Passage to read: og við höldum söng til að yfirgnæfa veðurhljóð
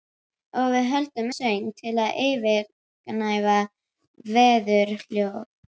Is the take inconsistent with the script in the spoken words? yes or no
no